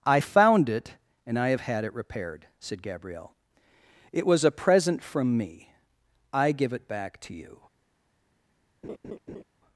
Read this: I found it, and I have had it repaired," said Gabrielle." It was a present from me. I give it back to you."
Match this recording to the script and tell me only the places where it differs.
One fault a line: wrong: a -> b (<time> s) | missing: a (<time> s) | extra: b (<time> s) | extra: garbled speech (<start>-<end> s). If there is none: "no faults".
no faults